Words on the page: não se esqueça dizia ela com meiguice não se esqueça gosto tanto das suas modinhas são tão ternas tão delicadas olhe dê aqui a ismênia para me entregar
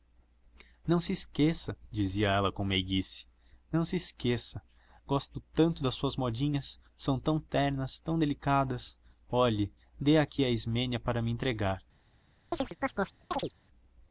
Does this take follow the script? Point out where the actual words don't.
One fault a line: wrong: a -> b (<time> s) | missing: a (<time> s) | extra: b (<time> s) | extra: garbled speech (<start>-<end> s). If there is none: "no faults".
no faults